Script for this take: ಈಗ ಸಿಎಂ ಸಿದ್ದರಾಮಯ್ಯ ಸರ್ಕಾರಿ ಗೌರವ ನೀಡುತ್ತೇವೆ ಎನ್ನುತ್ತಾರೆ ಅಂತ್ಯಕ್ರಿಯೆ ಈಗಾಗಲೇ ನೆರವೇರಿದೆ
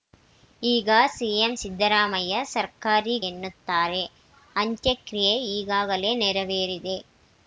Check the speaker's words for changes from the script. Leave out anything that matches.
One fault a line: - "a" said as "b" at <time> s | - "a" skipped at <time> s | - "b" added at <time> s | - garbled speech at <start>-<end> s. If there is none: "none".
- "ಗೌರವ ನೀಡುತ್ತೇವೆ" skipped at 3.1 s